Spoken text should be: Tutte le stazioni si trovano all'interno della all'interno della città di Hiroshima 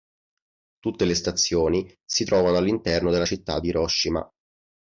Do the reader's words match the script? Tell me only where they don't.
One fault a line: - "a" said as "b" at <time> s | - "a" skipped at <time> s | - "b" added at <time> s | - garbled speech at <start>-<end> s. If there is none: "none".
- "all'interno della" skipped at 3.2 s